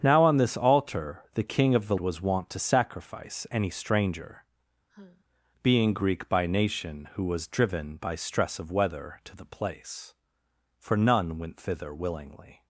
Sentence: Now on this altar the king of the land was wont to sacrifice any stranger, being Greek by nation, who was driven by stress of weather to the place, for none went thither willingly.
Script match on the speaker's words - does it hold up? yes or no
no